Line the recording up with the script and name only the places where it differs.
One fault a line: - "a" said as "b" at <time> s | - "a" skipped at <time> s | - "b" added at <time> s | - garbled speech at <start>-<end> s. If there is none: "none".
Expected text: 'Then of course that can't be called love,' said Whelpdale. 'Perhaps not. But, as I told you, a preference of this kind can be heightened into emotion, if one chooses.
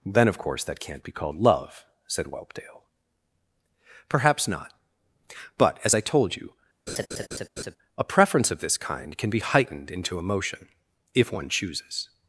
none